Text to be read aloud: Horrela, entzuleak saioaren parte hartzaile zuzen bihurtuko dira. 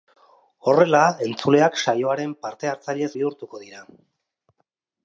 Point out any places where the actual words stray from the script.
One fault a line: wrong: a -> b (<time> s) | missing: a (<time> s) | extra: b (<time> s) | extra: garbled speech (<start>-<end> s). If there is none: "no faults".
missing: zuzen (3.1 s)